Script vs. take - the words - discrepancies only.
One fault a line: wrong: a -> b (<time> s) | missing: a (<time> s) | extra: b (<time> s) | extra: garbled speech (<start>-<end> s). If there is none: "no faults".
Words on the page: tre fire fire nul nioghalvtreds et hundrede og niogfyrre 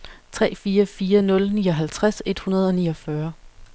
no faults